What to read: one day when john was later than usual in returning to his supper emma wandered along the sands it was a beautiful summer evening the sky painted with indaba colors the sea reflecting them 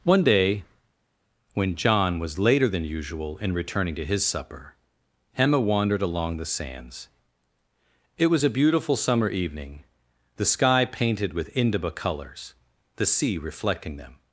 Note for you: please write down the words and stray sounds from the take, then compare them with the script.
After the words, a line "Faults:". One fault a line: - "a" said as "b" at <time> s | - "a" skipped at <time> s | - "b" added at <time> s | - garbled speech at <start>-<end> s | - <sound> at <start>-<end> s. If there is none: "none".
one day when john was later than usual in returning to his supper emma wandered along the sands it was a beautiful summer evening the sky painted with indaba colors the sea reflecting them
Faults:
none